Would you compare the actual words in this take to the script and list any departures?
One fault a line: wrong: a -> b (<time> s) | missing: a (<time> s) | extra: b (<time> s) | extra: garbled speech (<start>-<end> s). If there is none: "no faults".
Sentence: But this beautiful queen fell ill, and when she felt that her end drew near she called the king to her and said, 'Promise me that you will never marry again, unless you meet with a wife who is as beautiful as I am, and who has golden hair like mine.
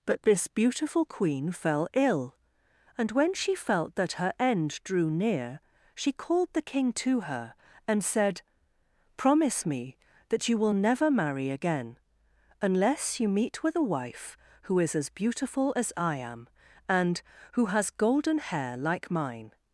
no faults